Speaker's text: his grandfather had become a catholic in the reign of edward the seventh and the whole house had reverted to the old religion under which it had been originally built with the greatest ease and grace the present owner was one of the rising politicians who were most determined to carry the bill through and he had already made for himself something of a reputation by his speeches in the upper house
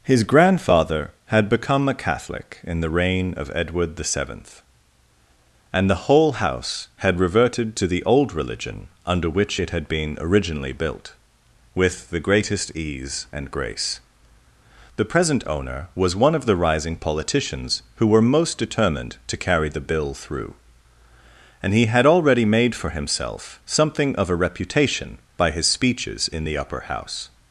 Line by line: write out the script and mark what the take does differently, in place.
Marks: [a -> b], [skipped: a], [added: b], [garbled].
his grandfather had become a catholic in the reign of edward the seventh and the whole house had reverted to the old religion under which it had been originally built with the greatest ease and grace the present owner was one of the rising politicians who were most determined to carry the bill through and he had already made for himself something of a reputation by his speeches in the upper house